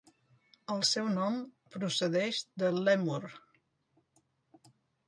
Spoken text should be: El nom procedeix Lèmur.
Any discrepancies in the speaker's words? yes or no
yes